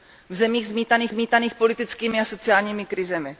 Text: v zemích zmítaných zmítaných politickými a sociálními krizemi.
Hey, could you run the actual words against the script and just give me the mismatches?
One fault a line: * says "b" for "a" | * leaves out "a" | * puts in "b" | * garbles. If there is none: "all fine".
all fine